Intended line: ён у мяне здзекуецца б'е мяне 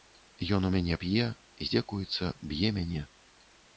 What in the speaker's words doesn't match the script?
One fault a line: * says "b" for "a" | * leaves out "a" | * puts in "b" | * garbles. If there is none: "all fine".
* puts in "п'е"